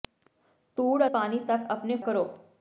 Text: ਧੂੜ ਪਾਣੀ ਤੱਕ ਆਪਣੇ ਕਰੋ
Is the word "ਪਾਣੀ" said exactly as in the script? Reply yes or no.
yes